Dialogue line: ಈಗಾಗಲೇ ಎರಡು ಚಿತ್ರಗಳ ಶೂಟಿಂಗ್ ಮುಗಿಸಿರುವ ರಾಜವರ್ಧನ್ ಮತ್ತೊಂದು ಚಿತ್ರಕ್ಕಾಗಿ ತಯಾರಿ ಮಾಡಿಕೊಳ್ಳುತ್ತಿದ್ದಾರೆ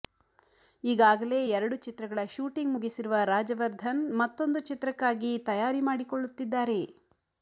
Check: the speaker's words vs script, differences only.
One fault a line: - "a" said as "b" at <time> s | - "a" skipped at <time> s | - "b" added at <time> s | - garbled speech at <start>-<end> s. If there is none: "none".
none